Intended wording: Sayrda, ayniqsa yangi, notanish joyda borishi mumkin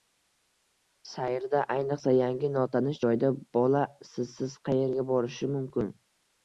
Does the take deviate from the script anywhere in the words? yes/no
yes